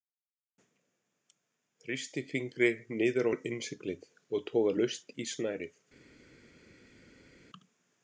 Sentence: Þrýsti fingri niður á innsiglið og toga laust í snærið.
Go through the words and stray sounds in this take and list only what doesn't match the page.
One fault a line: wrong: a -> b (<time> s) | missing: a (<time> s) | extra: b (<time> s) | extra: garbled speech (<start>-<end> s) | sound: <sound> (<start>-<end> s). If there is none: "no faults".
no faults